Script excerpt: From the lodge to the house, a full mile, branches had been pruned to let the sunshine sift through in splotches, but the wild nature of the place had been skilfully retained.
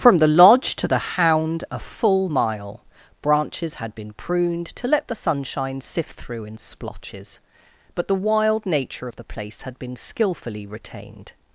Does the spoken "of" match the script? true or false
true